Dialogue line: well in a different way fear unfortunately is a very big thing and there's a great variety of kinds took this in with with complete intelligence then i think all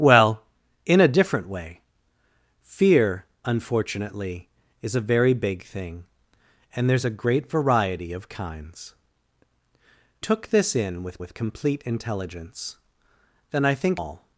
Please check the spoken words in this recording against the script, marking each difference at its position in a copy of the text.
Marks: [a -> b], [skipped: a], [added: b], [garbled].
well in a different way fear unfortunately is a very big thing and there's a great variety of kinds took this in with with complete intelligence then i think all